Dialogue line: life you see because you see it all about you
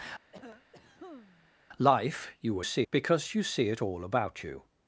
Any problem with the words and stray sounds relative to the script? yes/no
yes